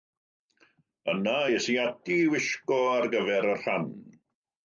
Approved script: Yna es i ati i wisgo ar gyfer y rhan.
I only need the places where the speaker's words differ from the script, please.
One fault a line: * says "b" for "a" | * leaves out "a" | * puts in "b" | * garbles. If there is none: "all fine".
all fine